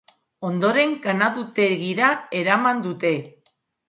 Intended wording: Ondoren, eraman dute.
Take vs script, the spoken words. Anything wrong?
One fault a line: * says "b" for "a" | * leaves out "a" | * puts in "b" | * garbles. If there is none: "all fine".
* puts in "ganadutegira"